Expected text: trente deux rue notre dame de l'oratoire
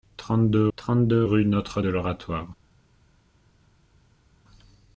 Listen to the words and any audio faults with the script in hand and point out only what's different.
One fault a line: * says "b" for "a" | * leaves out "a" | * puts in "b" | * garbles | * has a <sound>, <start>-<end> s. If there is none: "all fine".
* puts in "trente deux"
* leaves out "dame"